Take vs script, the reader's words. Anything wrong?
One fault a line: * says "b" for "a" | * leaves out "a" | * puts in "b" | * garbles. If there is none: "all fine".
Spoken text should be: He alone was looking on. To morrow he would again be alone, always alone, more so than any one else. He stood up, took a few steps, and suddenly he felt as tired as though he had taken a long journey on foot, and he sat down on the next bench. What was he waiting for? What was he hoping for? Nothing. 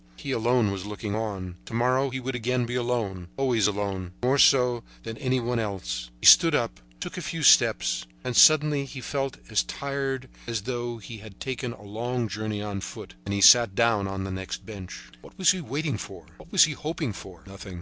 all fine